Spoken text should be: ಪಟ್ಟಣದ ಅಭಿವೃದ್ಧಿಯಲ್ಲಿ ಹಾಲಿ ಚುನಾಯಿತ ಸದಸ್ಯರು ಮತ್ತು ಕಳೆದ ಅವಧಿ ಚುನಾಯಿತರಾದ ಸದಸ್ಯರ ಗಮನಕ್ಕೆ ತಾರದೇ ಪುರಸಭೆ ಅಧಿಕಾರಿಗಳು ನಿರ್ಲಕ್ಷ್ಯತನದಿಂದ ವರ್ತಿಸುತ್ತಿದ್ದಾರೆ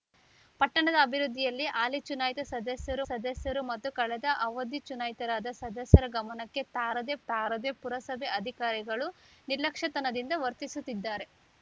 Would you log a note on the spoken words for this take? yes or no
yes